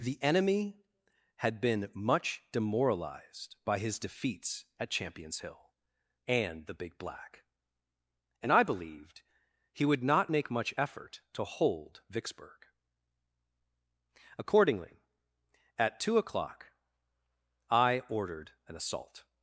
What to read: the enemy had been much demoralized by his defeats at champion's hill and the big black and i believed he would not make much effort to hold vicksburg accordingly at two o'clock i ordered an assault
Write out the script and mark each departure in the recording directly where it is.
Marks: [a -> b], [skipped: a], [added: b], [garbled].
the enemy had been much demoralized by his defeats at champion's hill and the big black and i believed he would not make much effort to hold vicksburg accordingly at two o'clock i ordered an assault